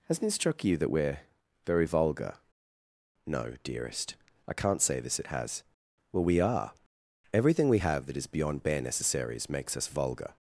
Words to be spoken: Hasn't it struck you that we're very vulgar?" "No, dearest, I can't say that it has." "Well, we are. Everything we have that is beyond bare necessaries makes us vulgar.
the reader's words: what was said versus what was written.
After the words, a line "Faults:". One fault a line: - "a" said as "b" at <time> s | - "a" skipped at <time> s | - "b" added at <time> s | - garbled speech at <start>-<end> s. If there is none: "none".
Hasn't it struck you that we're very vulgar?" "No, dearest, I can't say this it has." "Well, we are. Everything we have that is beyond bare necessaries makes us vulgar.
Faults:
- "that" said as "this" at 5.0 s